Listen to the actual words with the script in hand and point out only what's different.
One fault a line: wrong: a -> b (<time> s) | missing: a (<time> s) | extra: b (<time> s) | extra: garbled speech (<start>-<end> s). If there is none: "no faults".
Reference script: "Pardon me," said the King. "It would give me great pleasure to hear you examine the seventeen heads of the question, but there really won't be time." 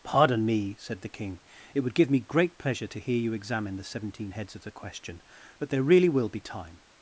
wrong: won't -> will (6.1 s)